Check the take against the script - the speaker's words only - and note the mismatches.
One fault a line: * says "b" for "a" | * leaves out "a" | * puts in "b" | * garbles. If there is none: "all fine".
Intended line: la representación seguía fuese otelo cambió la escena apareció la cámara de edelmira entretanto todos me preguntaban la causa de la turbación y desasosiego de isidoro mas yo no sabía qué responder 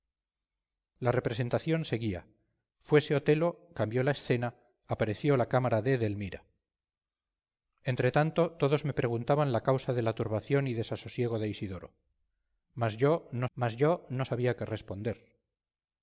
* puts in "mas yo no"